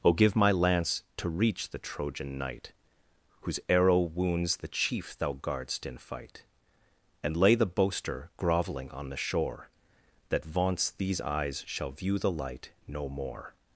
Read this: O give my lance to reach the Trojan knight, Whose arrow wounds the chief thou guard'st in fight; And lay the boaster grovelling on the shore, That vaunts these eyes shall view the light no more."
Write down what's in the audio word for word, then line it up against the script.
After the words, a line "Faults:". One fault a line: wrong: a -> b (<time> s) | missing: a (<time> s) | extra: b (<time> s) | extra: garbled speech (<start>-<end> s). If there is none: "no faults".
O give my lance to reach the Trojan knight, Whose arrow wounds the chief thou guard'st in fight; And lay the boaster grovelling on the shore, That vaunts these eyes shall view the light no more."
Faults:
no faults